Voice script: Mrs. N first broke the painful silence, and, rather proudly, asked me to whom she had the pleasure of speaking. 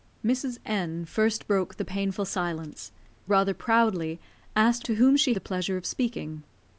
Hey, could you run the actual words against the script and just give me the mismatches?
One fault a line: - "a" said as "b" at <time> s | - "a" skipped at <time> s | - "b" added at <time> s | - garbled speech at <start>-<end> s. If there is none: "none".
- "and" skipped at 2.9 s
- "me" skipped at 4.8 s
- "had" skipped at 5.3 s